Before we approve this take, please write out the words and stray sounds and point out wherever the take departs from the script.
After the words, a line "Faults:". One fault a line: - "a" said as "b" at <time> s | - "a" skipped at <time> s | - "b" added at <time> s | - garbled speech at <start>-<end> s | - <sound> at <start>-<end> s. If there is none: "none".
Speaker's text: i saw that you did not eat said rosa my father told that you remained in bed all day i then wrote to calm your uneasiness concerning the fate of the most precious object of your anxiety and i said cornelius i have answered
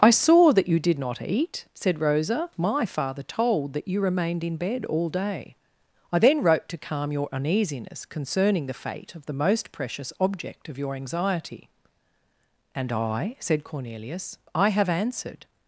i saw that you did not eat said rosa my father told that you remained in bed all day i then wrote to calm your uneasiness concerning the fate of the most precious object of your anxiety and i said cornelius i have answered
Faults:
none